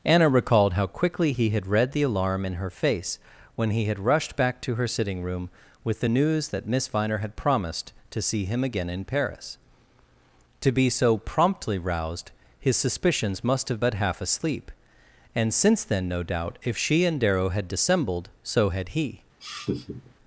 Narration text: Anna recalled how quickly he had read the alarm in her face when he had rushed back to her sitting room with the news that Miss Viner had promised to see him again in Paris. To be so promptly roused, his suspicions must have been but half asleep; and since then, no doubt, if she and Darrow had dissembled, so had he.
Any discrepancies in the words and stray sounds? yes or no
yes